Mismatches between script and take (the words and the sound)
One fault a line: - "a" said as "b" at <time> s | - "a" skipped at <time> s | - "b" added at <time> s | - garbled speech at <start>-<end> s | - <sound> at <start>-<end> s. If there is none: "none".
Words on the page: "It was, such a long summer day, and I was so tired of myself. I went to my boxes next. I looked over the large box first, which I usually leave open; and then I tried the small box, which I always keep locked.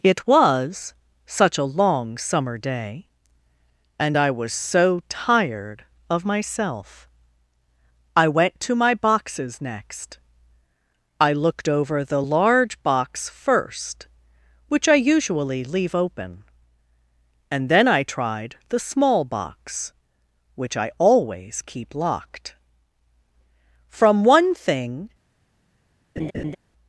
- "From one thing" added at 23.9 s
- laugh at 26.2-26.6 s